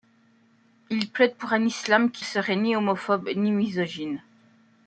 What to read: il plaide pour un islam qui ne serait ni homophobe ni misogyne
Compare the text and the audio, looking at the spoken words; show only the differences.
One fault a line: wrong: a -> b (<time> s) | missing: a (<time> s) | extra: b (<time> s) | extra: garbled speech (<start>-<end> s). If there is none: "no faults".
missing: ne (2.2 s)